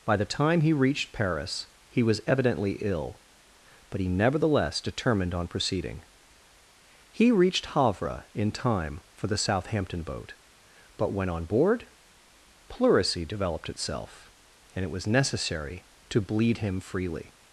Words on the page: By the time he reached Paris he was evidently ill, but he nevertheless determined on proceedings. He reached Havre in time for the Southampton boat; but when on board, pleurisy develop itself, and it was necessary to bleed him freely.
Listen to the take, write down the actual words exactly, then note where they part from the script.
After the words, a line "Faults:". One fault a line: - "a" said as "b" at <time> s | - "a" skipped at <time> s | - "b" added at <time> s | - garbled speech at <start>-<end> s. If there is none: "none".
By the time he reached Paris he was evidently ill, but he nevertheless determined on proceeding. He reached Havre in time for the Southampton boat; but when on board, pleurisy developed itself, and it was necessary to bleed him freely.
Faults:
- "proceedings" said as "proceeding" at 5.5 s
- "develop" said as "developed" at 13.2 s